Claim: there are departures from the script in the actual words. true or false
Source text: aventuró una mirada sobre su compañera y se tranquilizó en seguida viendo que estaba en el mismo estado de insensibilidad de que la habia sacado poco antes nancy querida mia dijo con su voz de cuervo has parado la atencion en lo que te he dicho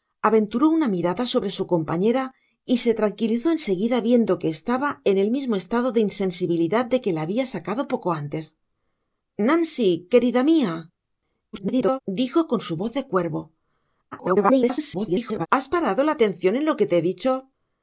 true